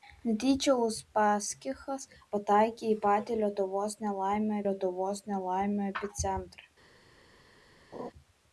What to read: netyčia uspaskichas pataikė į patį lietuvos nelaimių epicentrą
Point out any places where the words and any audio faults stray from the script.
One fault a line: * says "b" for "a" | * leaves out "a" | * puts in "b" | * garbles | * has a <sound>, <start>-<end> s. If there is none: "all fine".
* puts in "lietuvos nelaimių"
* has a laugh, 7.9-8.1 s